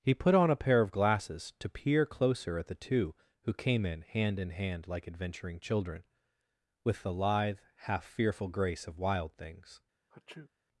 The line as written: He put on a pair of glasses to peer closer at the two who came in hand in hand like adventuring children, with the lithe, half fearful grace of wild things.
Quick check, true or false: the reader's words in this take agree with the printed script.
true